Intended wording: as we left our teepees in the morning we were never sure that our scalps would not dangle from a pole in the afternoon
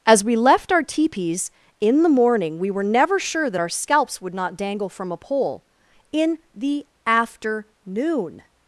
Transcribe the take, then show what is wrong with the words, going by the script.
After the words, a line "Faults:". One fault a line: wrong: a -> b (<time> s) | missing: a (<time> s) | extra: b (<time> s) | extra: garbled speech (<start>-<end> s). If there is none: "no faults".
as we left our teepees in the morning we were never sure that our scalps would not dangle from a pole in the afternoon
Faults:
no faults